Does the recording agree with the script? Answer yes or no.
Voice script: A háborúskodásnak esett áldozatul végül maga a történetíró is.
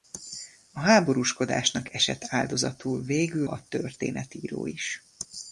no